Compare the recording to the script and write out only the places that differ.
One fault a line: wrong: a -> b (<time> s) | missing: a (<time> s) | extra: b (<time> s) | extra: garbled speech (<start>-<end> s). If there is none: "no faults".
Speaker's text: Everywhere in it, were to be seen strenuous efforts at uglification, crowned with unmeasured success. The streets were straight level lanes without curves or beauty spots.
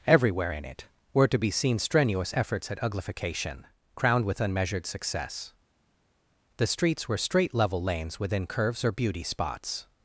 wrong: without -> within (8.2 s)